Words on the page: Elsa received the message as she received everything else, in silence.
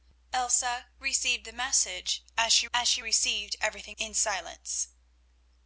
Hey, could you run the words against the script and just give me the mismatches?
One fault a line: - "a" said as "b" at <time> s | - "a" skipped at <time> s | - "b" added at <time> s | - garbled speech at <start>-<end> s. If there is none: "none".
- "as she" added at 2.7 s
- "else" skipped at 4.0 s